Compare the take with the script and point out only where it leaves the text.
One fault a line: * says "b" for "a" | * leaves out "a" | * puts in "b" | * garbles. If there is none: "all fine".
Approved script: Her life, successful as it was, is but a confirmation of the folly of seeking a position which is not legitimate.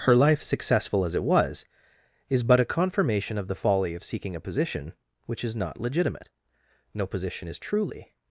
* puts in "No position is truly"